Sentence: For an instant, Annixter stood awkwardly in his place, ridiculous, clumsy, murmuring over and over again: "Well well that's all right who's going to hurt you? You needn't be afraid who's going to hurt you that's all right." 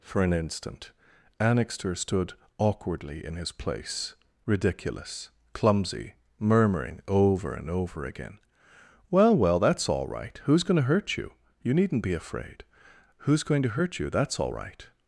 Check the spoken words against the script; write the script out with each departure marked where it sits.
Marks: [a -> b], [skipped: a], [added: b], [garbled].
For an instant, Annixter stood awkwardly in his place, ridiculous, clumsy, murmuring over and over again: "Well well that's all right who's going to hurt you? You needn't be afraid who's going to hurt you that's all right."